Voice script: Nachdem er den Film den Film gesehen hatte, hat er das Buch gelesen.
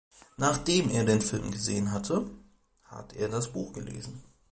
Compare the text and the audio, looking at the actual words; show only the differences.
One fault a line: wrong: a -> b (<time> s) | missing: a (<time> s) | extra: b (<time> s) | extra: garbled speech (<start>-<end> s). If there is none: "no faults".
missing: den Film (1.5 s)